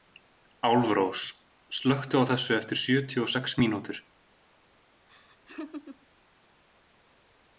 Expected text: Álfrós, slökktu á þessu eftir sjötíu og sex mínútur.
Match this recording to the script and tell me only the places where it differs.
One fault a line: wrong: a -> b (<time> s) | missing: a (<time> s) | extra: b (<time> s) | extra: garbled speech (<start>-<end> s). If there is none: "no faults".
no faults